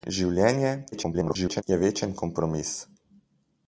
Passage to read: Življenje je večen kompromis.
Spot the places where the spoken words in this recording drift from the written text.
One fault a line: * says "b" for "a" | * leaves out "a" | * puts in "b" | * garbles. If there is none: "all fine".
* garbles